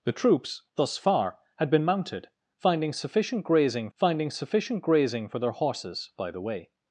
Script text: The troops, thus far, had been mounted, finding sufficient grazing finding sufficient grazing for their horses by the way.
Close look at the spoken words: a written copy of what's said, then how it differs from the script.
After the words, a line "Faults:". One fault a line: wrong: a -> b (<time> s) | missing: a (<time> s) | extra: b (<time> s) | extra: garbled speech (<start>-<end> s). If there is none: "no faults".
The troops, thus far, had been mounted, finding sufficient grazing finding sufficient grazing for their horses by the way.
Faults:
no faults